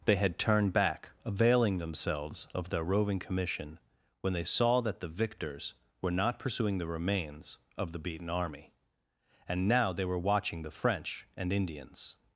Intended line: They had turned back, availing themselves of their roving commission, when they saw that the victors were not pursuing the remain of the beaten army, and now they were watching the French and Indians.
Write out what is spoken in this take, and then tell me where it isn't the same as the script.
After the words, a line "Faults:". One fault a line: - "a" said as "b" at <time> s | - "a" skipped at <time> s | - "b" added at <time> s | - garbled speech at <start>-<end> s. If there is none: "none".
They had turned back, availing themselves of their roving commission, when they saw that the victors were not pursuing the remains of the beaten army, and now they were watching the French and Indians.
Faults:
- "remain" said as "remains" at 6.9 s